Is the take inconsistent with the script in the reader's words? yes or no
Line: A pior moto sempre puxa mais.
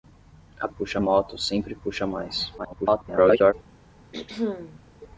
yes